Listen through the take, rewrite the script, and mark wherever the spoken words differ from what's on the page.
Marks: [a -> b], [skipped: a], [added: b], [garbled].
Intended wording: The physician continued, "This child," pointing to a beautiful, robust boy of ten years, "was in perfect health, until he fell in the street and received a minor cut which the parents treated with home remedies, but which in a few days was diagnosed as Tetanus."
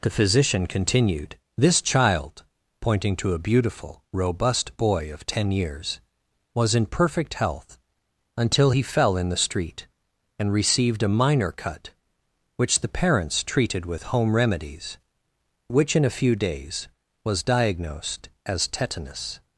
The physician continued, "This child," pointing to a beautiful, robust boy of ten years, "was in perfect health, until he fell in the street and received a minor cut which the parents treated with home remedies, [skipped: but] which in a few days was diagnosed as Tetanus."